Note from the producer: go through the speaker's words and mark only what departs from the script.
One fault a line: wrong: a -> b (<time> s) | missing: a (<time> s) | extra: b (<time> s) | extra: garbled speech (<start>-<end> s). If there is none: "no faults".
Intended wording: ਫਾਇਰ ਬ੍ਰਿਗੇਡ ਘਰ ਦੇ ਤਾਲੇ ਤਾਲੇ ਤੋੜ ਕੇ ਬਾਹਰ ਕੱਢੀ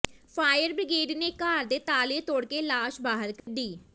extra: ਨੇ (1.2 s)
missing: ਤਾਲੇ (2.2 s)
extra: ਲਾਸ਼ (2.6 s)